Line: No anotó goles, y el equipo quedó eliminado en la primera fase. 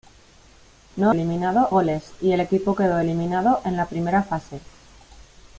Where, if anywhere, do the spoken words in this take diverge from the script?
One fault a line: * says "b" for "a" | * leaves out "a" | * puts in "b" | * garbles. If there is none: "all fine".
* says "eliminado" for "anotó"